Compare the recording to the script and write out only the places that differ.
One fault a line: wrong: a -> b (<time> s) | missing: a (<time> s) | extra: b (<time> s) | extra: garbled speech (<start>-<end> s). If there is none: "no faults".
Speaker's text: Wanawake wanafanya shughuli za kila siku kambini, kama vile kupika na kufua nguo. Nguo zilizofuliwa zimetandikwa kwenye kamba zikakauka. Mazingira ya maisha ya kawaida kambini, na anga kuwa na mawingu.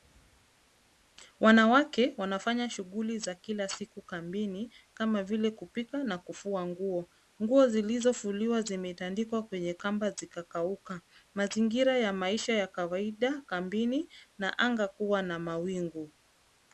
no faults